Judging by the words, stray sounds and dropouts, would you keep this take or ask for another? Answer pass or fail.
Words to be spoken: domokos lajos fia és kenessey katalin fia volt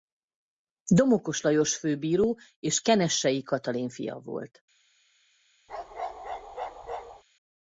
fail